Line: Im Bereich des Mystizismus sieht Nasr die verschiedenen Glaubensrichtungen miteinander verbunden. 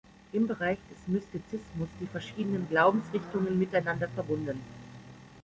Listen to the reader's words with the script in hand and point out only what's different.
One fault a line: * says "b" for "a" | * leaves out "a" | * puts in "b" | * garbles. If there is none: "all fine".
* leaves out "sieht Nasr"